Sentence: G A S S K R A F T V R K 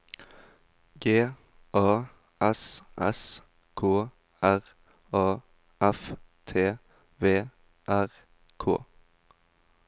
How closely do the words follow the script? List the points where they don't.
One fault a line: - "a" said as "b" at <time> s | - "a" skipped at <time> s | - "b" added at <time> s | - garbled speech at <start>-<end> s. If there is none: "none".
none